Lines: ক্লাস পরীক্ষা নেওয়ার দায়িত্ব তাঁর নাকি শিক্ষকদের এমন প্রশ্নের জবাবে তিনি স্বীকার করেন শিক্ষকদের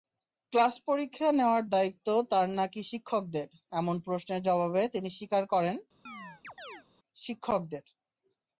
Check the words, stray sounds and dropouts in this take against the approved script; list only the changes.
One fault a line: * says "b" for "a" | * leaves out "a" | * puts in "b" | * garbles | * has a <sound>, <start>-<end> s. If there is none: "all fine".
* has a chirp, 6.1-6.8 s